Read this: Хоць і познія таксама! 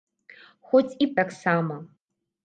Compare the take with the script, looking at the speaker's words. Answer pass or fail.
fail